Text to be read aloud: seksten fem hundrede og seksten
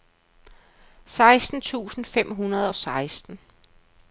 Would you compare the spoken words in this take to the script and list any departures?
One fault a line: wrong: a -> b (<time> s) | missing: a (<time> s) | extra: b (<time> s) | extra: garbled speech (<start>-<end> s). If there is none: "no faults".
extra: tusind (1.6 s)